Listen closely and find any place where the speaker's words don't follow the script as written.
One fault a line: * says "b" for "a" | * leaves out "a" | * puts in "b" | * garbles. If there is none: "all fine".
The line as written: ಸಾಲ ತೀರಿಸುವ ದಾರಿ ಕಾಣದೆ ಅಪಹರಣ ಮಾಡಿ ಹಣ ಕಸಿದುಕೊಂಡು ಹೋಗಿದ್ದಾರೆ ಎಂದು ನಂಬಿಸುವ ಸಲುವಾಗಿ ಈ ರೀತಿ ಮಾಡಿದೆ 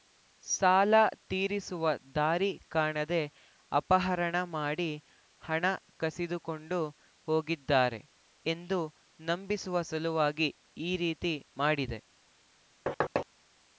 all fine